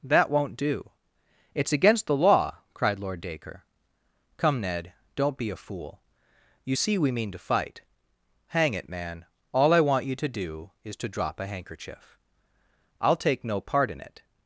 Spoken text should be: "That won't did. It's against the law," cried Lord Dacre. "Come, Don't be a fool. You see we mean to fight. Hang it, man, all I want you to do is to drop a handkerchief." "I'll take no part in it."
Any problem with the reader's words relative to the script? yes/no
yes